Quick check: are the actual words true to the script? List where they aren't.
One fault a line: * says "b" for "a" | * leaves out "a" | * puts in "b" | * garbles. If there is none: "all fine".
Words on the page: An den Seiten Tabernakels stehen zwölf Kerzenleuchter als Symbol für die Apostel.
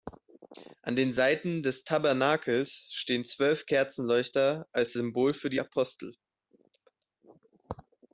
* puts in "des"